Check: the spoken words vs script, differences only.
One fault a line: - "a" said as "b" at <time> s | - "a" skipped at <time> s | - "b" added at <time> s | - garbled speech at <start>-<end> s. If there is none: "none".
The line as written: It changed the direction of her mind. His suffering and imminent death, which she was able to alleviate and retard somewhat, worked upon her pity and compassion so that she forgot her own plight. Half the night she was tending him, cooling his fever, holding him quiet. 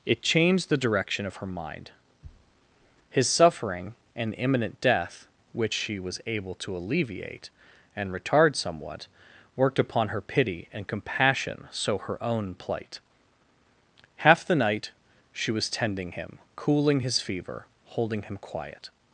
- "that she forgot" skipped at 12.0 s